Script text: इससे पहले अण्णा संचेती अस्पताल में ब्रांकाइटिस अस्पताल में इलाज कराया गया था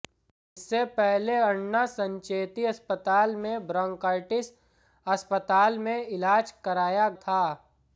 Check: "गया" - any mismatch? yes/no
yes